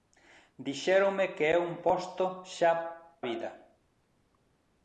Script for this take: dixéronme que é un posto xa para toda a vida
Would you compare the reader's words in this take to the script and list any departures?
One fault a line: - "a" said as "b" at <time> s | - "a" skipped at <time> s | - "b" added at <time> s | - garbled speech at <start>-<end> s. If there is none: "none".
- "para toda a" skipped at 2.7 s